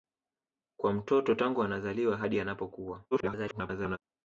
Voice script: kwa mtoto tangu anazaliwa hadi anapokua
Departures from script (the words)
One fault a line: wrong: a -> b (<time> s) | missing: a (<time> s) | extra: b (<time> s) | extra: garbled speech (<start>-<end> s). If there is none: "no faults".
extra: garbled speech (3.1-4.0 s)